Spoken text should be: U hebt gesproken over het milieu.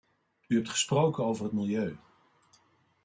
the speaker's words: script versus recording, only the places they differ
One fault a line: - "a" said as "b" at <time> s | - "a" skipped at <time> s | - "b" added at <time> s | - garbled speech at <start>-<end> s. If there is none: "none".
none